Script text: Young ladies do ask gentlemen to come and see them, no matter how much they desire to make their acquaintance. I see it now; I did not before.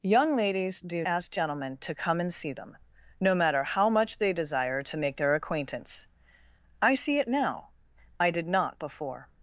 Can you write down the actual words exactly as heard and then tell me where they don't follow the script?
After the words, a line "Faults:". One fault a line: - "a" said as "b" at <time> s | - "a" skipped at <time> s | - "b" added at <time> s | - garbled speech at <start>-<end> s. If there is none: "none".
Young ladies do ask gentlemen to come and see them, no matter how much they desire to make their acquaintance. I see it now; I did not before.
Faults:
none